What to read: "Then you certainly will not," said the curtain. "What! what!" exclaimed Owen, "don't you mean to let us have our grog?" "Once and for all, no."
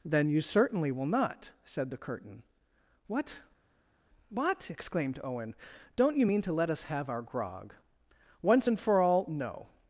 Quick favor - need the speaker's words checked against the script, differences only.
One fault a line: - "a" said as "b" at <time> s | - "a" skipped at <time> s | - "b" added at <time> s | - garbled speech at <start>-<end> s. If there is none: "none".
none